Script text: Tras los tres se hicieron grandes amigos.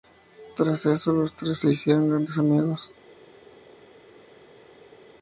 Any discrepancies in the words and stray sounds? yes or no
yes